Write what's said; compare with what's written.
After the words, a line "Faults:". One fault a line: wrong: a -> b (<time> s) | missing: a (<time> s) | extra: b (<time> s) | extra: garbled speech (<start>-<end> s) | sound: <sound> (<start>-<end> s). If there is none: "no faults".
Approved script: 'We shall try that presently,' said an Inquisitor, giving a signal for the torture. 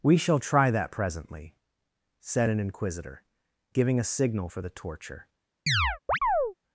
'We shall try that presently,' said an Inquisitor, giving a signal for the torture.
Faults:
sound: chirp (5.7-6.5 s)